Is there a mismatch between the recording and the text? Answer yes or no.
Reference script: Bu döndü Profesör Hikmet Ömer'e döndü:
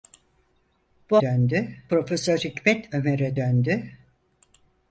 no